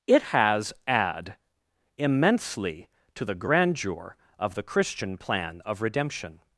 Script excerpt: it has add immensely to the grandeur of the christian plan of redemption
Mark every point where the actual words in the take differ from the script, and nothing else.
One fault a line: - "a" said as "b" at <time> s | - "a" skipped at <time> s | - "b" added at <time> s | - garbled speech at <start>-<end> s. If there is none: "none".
none